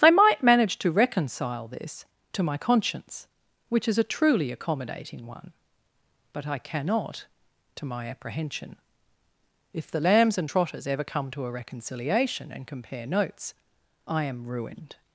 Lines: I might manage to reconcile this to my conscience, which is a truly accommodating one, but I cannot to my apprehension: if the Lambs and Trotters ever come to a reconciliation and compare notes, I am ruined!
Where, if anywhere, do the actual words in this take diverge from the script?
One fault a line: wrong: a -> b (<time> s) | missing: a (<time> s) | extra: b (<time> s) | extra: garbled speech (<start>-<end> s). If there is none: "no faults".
no faults